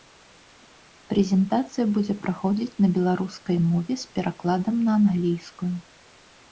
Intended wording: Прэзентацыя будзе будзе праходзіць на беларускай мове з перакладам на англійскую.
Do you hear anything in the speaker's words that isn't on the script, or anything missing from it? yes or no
yes